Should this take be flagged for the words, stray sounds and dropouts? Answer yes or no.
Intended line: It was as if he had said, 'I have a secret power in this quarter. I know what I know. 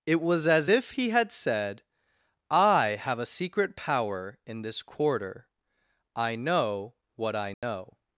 yes